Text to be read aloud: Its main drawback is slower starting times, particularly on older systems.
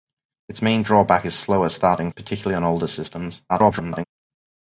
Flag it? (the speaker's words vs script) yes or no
yes